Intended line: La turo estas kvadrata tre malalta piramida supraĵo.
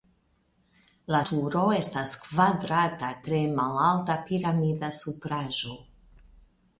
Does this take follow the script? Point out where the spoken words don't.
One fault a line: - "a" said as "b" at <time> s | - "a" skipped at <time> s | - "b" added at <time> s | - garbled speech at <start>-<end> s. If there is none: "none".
none